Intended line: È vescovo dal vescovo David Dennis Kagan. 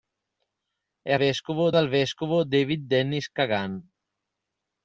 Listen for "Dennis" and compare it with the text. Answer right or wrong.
right